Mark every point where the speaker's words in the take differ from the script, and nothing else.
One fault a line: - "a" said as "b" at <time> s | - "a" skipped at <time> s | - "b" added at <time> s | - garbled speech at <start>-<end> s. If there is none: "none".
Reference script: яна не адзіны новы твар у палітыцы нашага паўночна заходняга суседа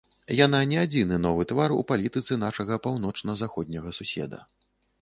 none